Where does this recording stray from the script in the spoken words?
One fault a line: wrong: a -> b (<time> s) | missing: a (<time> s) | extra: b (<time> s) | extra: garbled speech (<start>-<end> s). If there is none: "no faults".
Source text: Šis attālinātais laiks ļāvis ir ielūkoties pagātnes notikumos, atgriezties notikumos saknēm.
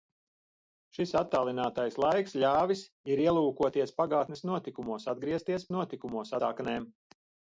no faults